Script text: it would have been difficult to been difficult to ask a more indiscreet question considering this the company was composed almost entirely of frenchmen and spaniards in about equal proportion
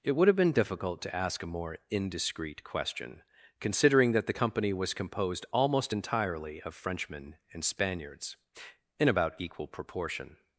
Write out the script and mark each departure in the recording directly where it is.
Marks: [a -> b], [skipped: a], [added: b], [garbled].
it would have been difficult to [skipped: been difficult to] ask a more indiscreet question considering [this -> that] the company was composed almost entirely of frenchmen and spaniards in about equal proportion